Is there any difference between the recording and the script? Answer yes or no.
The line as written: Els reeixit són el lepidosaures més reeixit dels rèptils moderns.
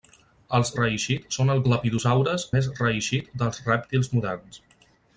no